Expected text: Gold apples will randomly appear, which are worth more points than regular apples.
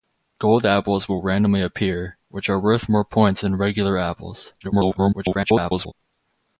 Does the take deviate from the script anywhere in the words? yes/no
yes